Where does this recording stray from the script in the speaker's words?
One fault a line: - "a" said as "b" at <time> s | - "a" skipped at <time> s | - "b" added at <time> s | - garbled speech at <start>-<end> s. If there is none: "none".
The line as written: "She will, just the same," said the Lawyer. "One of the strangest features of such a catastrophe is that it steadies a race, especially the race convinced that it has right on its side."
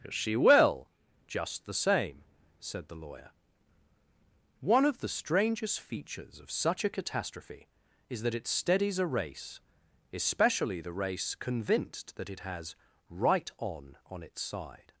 - "on" added at 14.1 s